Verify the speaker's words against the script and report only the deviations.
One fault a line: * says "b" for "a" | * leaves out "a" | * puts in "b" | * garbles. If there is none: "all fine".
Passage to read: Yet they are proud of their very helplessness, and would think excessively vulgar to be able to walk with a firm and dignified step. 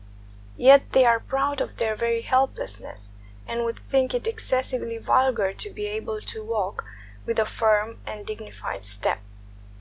* puts in "it"